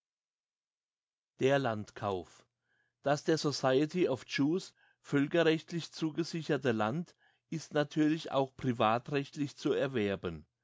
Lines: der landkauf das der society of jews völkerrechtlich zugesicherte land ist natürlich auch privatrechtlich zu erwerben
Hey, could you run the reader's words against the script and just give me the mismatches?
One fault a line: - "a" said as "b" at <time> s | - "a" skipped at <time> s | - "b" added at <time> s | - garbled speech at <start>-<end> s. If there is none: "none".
none